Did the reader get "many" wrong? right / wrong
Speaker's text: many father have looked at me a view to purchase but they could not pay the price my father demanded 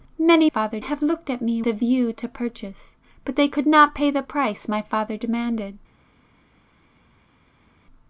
right